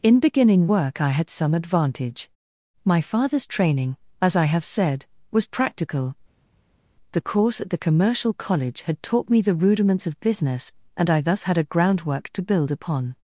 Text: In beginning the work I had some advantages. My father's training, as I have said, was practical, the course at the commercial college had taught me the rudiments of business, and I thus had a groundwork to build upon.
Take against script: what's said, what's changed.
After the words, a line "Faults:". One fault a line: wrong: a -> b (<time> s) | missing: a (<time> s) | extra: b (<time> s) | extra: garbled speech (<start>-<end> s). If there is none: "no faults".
In beginning work I had some advantage. My father's training, as I have said, was practical, the course at the commercial college had taught me the rudiments of business, and I thus had a groundwork to build upon.
Faults:
missing: the (0.7 s)
wrong: advantages -> advantage (1.5 s)